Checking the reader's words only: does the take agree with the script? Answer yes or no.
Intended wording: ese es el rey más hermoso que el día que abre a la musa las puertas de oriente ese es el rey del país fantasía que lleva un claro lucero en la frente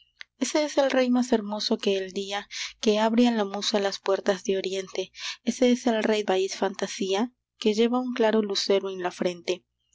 no